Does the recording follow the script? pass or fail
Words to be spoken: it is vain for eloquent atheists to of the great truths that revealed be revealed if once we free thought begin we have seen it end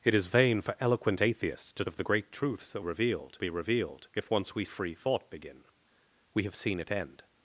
pass